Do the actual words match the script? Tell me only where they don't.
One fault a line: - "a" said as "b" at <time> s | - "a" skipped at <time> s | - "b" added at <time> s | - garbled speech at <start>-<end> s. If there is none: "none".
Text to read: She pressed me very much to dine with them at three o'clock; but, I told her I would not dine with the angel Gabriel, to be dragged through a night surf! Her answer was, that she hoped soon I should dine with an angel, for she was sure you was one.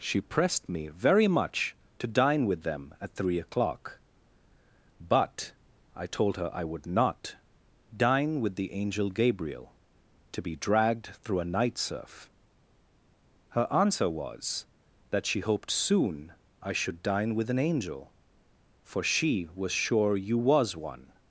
none